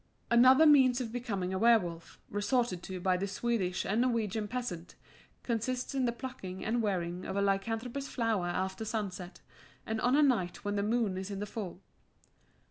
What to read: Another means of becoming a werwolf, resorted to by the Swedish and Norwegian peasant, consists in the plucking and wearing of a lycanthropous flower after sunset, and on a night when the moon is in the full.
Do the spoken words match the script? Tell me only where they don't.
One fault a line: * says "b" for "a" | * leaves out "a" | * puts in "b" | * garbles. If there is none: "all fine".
all fine